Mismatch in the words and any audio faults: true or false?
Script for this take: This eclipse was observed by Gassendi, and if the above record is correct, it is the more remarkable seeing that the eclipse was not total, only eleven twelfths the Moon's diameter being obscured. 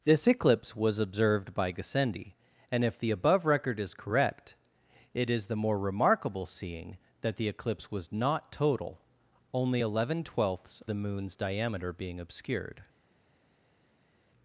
false